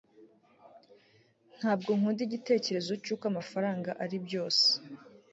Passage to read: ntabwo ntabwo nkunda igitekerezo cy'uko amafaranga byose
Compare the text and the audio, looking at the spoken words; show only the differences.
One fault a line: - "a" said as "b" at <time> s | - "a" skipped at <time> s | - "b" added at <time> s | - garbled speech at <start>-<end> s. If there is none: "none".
- "ntabwo" skipped at 1.9 s
- "ari" added at 4.0 s